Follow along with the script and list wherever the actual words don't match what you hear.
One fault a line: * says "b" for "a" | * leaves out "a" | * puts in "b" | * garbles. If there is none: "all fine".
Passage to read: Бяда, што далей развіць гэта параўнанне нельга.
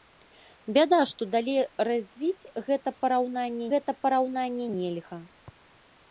* puts in "гэта параўнанне"